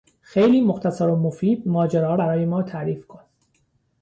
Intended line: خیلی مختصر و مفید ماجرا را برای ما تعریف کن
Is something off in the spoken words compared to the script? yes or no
yes